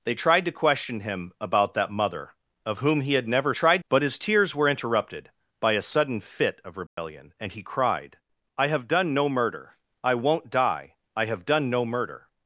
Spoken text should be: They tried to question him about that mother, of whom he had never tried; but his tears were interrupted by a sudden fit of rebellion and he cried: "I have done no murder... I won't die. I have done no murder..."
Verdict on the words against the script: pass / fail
pass